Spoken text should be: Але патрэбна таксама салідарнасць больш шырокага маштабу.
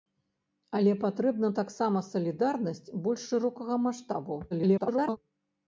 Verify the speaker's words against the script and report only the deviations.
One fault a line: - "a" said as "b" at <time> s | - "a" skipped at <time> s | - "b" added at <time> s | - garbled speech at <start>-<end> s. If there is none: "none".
- garbled speech at 4.5-5.2 s